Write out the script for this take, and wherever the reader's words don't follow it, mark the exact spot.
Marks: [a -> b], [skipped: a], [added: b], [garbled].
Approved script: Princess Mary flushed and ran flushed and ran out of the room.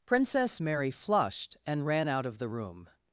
Princess Mary flushed and ran [skipped: flushed and ran] out of the room.